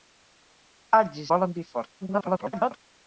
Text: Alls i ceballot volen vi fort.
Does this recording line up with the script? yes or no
no